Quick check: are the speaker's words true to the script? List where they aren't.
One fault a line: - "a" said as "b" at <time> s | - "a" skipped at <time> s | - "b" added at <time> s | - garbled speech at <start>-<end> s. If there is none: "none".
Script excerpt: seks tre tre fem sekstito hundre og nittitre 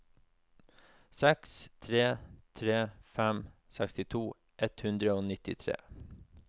- "ett" added at 4.7 s